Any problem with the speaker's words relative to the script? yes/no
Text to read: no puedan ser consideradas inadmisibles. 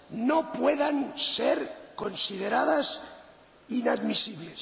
no